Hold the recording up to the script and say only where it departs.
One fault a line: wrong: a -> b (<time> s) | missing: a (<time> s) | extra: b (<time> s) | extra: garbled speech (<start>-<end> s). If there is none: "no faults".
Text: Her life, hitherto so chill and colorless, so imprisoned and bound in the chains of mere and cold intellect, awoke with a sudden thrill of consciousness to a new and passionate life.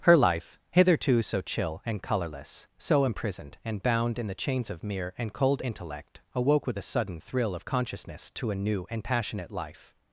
no faults